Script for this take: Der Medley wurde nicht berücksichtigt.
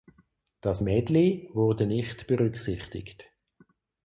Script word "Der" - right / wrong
wrong